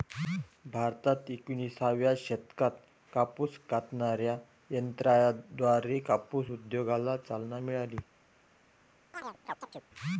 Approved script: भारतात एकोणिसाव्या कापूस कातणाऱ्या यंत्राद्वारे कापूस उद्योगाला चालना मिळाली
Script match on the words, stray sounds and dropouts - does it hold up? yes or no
no